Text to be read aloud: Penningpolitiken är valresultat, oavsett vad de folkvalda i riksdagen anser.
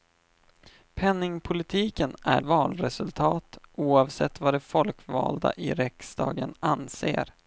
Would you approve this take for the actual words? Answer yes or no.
yes